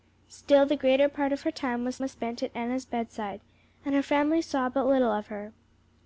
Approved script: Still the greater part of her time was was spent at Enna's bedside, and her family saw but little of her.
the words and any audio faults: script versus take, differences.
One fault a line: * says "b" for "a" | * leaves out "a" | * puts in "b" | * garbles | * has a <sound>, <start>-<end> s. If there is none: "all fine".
all fine